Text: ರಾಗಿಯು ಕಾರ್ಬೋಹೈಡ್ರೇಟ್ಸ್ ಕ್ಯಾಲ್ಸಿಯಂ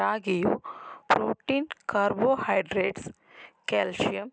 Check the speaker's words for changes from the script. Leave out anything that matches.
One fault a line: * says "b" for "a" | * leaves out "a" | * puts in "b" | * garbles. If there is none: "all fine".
* puts in "ಪ್ರೋಟೀನ್"